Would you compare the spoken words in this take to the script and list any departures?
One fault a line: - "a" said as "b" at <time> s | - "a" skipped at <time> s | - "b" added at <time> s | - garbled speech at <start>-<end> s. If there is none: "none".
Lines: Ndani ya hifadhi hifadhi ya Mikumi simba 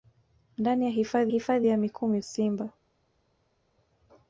none